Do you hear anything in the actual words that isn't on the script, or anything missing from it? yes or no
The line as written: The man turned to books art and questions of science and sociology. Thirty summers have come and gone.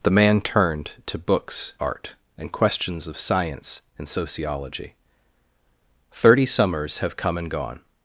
no